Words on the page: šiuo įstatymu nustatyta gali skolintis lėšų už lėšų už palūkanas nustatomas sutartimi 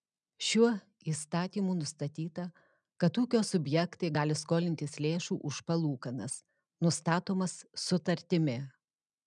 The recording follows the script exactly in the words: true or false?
false